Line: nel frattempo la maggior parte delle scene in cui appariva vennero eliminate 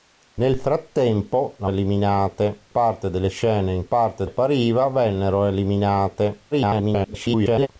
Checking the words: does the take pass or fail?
fail